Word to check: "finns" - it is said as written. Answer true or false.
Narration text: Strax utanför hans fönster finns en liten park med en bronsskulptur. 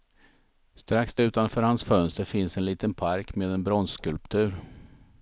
true